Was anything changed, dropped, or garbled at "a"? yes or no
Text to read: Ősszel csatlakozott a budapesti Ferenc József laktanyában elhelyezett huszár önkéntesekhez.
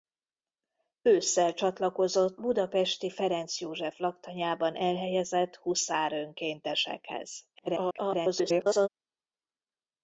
yes